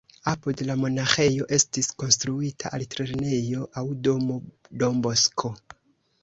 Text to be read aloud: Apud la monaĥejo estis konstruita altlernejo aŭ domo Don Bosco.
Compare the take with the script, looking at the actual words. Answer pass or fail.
pass